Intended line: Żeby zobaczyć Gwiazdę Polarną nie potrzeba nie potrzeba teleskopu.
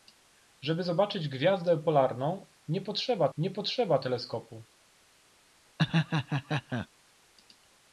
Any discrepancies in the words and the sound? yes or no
yes